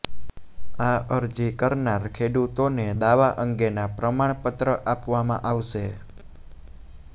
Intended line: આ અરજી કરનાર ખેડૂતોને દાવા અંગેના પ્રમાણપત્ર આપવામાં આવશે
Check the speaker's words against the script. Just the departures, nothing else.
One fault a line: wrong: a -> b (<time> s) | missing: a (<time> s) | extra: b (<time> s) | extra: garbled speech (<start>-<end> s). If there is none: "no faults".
no faults